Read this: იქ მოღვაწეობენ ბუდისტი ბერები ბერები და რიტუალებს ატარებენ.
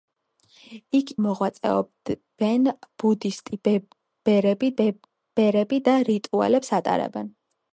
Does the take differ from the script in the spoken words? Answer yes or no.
no